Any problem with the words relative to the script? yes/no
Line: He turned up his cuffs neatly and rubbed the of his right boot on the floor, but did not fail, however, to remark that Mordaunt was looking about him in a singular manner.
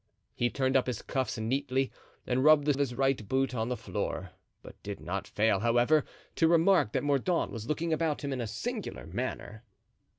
no